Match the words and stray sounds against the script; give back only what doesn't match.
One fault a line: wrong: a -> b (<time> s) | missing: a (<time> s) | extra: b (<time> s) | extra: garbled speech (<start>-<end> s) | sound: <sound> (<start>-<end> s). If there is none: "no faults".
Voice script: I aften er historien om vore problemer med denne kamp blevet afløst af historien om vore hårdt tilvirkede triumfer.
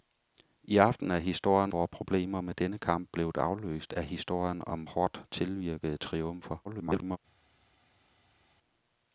missing: om (1.7 s)
missing: vore (4.9 s)
extra: garbled speech (6.6-7.2 s)